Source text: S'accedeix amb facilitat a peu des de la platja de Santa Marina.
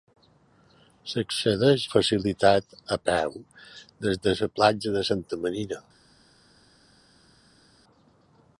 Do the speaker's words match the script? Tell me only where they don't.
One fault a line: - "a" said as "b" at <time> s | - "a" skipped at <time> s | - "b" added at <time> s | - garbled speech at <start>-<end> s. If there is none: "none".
- "amb" skipped at 1.8 s